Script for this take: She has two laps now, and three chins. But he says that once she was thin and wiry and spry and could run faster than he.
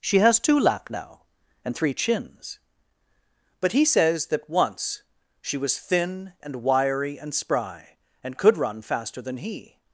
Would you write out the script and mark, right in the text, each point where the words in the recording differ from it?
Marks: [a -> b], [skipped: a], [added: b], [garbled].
She has two [laps -> lap] now, and three chins. But he says that once she was thin and wiry and spry and could run faster than he.